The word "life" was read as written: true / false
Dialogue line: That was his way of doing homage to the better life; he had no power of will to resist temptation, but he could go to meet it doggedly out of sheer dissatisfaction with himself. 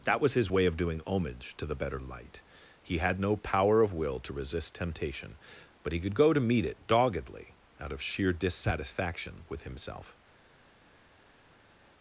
false